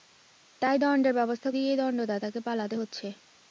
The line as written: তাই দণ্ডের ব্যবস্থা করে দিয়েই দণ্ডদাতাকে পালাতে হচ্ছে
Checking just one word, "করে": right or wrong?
wrong